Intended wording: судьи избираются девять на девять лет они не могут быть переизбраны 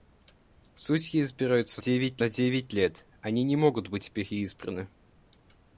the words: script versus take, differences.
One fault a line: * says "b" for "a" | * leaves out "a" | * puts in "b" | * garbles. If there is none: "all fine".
all fine